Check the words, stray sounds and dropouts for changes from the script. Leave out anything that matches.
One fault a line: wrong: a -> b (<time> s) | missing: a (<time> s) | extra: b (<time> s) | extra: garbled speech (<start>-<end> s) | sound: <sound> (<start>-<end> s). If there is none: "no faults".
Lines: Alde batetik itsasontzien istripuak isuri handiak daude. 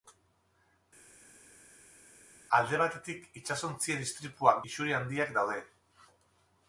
no faults